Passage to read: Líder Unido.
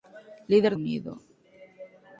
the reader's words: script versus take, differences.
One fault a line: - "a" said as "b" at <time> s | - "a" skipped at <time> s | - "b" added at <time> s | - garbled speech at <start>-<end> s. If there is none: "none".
none